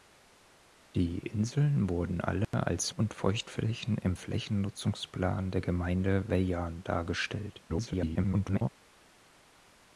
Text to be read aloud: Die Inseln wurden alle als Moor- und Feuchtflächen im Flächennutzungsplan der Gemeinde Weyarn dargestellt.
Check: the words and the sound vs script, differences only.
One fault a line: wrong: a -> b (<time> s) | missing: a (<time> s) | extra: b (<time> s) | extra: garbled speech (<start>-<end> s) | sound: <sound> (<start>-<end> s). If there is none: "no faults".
sound: dropout (2.4-2.5 s)
missing: Moor (3.0 s)
extra: garbled speech (7.7-8.7 s)